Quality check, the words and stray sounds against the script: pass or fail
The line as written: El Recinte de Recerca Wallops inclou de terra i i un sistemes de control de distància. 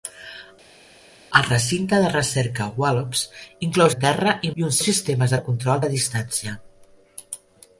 pass